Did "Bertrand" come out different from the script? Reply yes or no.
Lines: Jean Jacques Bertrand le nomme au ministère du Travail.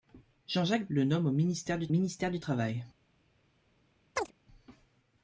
yes